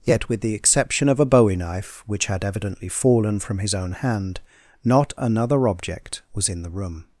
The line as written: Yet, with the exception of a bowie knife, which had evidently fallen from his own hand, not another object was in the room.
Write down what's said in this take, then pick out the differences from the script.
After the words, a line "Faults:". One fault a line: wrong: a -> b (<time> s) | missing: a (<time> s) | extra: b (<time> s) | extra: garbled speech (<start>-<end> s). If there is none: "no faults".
Yet, with the exception of a bowie knife, which had evidently fallen from his own hand, not another object was in the room.
Faults:
no faults